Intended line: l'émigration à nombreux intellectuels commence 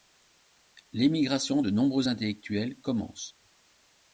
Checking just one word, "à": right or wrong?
wrong